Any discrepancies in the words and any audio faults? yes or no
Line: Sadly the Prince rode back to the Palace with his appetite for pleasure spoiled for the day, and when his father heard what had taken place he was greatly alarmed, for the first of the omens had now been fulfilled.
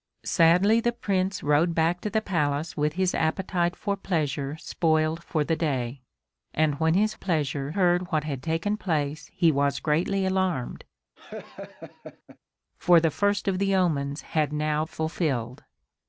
yes